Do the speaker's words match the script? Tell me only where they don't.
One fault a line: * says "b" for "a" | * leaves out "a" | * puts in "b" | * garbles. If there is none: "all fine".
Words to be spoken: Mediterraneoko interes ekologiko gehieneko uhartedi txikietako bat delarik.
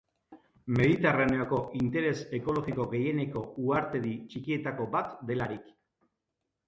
all fine